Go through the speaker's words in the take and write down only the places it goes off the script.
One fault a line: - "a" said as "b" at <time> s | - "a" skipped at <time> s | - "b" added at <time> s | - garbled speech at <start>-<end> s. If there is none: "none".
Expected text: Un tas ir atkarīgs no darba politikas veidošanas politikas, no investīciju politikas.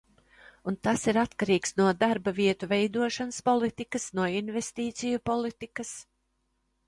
- "politikas" said as "vietu" at 2.4 s